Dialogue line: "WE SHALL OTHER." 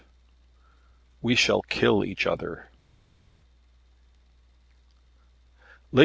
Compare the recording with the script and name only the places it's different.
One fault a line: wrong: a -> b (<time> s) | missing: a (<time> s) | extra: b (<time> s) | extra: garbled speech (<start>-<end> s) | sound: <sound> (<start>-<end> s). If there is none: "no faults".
extra: KILL EACH (1.7 s)